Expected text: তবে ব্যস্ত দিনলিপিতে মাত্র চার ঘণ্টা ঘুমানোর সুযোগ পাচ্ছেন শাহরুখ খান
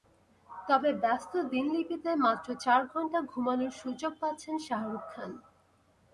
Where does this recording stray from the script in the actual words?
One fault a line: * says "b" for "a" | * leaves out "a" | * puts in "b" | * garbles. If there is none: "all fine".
all fine